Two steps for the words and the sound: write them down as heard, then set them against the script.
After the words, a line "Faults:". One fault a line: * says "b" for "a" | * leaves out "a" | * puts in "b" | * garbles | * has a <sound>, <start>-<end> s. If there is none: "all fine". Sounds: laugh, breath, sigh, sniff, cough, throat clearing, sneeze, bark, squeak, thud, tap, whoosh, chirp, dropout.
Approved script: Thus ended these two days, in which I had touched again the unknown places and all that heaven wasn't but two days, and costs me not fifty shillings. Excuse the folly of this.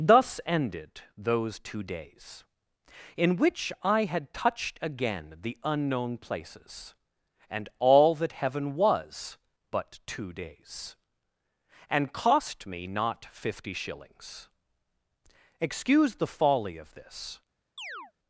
Thus ended those two days, in which I had touched again the unknown places and all that heaven was but two days, and cost me not fifty shillings. Excuse the folly of this.
Faults:
* says "those" for "these"
* says "was" for "wasn't"
* says "cost" for "costs"
* has a chirp, 17.8-18.1 s